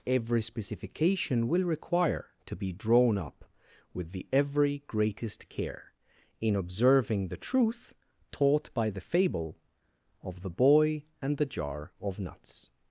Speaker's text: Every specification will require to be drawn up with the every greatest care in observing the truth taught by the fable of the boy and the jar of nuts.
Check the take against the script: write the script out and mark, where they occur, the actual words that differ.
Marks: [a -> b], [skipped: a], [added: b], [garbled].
Every specification will require to be drawn up with the every greatest care in observing the truth taught by the fable of the boy and the jar of nuts.